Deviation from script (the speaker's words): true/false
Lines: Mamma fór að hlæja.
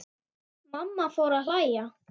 false